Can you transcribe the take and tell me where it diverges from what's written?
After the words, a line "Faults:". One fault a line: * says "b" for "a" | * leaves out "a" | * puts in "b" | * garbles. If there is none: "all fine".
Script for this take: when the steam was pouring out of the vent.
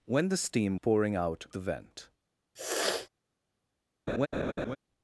when the steam pouring out the vent.
Faults:
* leaves out "was"
* leaves out "of"